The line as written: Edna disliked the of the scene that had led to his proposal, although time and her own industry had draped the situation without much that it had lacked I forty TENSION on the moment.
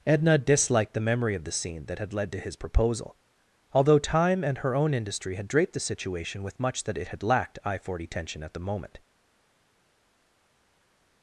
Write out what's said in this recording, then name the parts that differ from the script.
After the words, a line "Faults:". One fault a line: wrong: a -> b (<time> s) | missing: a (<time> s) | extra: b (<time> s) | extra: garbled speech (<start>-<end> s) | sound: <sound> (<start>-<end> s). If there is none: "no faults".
Edna disliked the memory of the scene that had led to his proposal, although time and her own industry had draped the situation with much that it had lacked I forty TENSION at the moment.
Faults:
extra: memory (1.0 s)
wrong: without -> with (6.4 s)
wrong: on -> at (8.4 s)